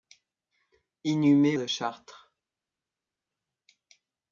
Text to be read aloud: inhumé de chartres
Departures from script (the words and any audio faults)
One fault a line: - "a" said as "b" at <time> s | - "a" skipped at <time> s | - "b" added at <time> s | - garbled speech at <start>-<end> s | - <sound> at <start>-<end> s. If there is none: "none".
none